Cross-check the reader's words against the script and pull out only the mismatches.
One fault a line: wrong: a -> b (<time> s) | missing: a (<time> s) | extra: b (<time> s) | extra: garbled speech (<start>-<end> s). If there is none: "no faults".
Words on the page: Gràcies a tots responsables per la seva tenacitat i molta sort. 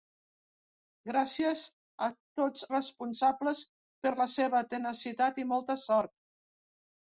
no faults